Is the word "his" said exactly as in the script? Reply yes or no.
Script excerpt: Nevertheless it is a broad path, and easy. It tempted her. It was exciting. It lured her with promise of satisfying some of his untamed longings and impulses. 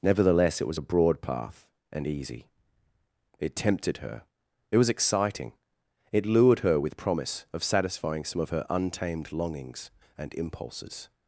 no